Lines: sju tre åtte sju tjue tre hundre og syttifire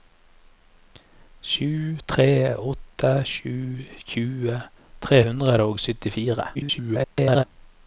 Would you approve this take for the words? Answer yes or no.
no